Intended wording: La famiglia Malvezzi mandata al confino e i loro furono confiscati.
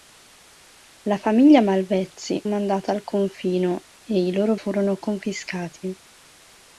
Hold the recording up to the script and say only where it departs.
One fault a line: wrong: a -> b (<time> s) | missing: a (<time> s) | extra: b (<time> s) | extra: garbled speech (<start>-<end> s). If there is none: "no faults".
no faults